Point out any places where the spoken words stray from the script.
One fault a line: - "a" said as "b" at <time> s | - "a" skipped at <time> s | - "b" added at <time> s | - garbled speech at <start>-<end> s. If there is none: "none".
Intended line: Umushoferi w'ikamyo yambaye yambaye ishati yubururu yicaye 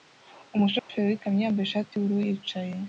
- "yambaye" skipped at 1.6 s